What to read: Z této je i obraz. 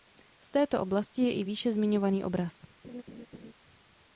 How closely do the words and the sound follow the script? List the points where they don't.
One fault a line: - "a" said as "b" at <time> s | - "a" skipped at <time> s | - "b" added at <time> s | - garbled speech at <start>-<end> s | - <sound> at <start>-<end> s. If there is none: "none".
- "oblasti" added at 0.8 s
- "výše zmiňovaný" added at 1.4 s
- laugh at 2.8-3.5 s